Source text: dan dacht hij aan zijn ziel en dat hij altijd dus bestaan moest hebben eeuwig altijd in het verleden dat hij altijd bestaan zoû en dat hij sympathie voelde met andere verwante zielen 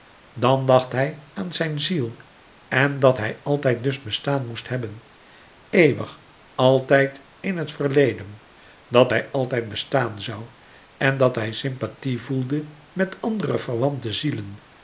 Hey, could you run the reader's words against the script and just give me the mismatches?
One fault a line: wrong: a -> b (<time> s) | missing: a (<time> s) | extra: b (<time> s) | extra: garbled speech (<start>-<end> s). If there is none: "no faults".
no faults